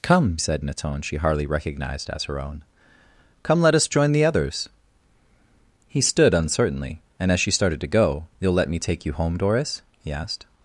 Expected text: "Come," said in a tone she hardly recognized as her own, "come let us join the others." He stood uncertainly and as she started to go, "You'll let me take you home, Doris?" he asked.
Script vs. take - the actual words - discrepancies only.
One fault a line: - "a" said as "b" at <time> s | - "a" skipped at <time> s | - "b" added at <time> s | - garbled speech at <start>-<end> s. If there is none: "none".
none